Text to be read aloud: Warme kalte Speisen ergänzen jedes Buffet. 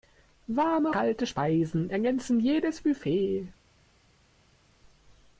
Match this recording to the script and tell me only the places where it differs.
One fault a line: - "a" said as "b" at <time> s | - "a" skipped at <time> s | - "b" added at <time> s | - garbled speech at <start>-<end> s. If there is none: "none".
none